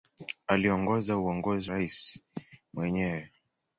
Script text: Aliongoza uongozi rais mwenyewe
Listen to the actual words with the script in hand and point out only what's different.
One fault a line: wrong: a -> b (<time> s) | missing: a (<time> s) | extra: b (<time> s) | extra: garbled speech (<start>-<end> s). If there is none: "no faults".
no faults